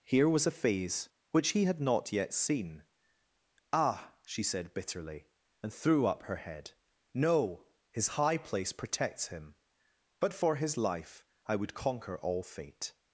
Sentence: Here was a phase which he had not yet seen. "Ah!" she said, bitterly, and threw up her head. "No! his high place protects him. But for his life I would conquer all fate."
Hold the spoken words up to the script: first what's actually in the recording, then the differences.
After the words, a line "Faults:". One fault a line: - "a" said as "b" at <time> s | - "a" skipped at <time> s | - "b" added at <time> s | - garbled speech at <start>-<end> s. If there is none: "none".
Here was a phase which he had not yet seen. "Ah!" she said, bitterly, and threw up her head. "No! his high place protects him. But for his life I would conquer all fate."
Faults:
none